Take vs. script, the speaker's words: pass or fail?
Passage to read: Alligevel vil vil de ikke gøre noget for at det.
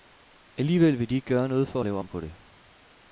fail